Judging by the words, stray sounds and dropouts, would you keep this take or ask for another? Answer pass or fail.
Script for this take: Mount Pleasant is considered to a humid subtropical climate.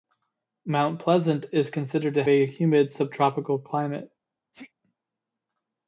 fail